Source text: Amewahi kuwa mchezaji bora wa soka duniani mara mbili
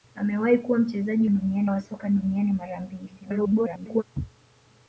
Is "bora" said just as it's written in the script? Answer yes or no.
no